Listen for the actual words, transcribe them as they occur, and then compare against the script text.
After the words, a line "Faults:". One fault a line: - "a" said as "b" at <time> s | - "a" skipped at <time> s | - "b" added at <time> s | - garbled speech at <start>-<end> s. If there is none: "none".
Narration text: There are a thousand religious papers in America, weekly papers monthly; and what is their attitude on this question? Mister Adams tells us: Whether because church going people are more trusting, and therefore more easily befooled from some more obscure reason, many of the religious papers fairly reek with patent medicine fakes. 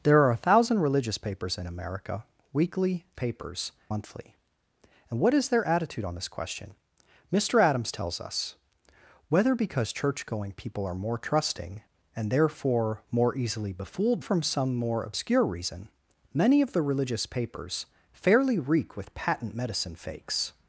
There are a thousand religious papers in America, weekly papers monthly; and what is their attitude on this question? Mister Adams tells us: Whether because church going people are more trusting, and therefore more easily befooled from some more obscure reason, many of the religious papers fairly reek with patent medicine fakes.
Faults:
none